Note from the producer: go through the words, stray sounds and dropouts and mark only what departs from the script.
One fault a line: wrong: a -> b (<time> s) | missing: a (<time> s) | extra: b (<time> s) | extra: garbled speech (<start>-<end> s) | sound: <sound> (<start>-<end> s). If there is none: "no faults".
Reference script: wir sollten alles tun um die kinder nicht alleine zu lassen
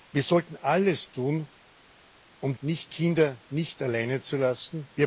wrong: die -> nicht (2.6 s)